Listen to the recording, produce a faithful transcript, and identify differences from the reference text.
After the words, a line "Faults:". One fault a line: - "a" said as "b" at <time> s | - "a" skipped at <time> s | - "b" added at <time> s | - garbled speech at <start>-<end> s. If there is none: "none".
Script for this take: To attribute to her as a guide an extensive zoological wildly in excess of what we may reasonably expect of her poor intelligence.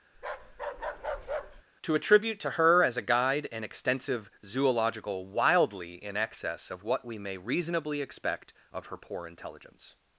To attribute to her as a guide an extensive zoological wildly in excess of what we may reasonably expect of her poor intelligence.
Faults:
none